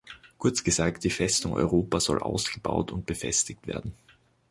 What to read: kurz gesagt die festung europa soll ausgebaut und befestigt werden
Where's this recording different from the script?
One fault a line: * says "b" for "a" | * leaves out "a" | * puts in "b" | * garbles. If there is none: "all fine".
all fine